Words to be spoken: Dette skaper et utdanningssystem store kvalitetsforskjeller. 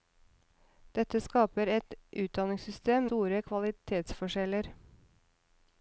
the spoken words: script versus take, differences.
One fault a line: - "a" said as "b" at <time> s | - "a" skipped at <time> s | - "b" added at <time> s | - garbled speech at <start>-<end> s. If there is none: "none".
none